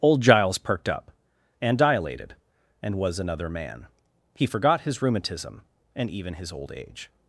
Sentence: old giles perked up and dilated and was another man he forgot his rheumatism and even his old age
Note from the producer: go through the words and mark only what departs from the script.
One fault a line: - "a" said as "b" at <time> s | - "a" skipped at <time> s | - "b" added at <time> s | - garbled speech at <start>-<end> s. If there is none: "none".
none